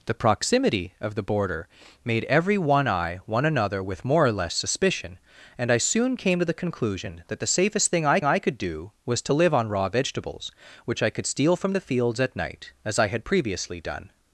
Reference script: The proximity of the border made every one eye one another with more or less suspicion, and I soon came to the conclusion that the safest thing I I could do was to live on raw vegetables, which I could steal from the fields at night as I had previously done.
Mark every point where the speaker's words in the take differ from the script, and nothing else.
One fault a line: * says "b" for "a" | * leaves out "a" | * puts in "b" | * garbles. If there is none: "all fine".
all fine